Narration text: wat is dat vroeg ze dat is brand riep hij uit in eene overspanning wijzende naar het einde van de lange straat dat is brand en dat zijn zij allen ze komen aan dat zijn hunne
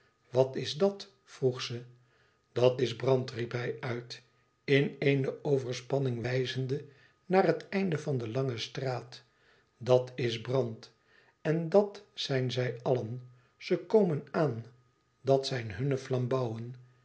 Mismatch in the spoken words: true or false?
false